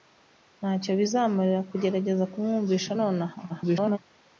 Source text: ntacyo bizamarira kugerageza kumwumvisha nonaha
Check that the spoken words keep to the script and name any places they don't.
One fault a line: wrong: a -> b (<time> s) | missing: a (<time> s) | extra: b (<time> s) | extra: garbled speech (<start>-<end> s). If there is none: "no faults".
extra: garbled speech (3.5-4.0 s)